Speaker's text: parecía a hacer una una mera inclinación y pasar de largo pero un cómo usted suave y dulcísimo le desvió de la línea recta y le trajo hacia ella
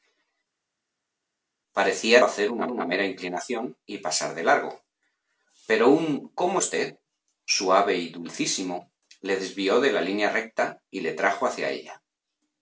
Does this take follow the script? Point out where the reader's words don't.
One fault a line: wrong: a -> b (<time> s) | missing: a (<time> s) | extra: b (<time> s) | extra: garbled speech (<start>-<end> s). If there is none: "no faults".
no faults